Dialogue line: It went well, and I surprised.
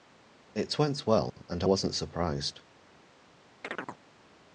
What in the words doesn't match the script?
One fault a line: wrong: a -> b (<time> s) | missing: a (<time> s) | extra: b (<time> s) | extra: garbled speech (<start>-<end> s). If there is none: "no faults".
extra: wasn't (1.6 s)